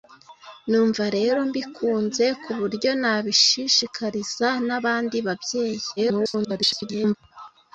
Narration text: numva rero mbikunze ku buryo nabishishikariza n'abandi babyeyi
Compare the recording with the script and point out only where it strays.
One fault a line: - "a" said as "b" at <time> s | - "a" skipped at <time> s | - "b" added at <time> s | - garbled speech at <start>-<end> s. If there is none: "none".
- garbled speech at 6.0-7.2 s